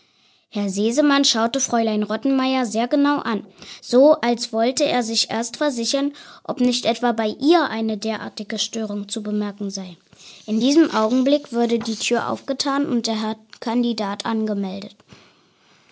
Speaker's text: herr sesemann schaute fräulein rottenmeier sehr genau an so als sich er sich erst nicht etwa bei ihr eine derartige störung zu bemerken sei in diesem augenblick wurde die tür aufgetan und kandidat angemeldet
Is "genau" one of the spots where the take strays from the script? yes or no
no